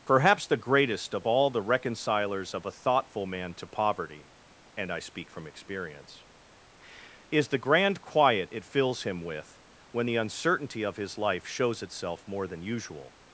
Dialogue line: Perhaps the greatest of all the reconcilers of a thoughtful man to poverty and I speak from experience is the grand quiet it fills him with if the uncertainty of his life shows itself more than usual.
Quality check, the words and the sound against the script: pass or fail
fail